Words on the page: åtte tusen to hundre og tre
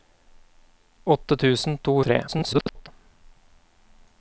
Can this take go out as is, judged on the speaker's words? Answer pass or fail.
fail